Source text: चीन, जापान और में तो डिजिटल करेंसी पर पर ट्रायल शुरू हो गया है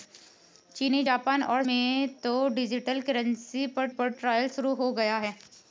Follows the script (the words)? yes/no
yes